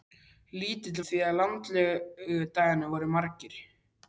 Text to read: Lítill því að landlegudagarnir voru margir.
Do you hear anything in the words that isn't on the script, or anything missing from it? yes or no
no